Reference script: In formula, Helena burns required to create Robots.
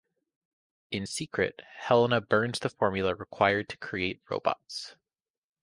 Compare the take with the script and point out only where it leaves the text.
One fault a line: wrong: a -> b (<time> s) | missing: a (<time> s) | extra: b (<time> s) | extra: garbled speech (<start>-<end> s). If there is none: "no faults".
wrong: formula -> secret (1.0 s)
extra: the formula (2.6 s)